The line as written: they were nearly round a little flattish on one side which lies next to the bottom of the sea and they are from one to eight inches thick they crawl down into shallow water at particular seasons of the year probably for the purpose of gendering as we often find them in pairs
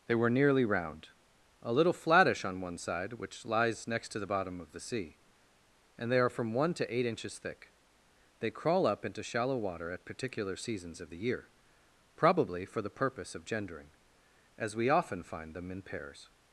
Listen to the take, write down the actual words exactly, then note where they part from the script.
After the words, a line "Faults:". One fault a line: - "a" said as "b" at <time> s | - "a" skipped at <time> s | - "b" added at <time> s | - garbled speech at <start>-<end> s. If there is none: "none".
they were nearly round a little flattish on one side which lies next to the bottom of the sea and they are from one to eight inches thick they crawl up into shallow water at particular seasons of the year probably for the purpose of gendering as we often find them in pairs
Faults:
- "down" said as "up" at 8.9 s